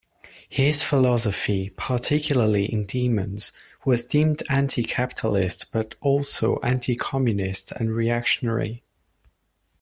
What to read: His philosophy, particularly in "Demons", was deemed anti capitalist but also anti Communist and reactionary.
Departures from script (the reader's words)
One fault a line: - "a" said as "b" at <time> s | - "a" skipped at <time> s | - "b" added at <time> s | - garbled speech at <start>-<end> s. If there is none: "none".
none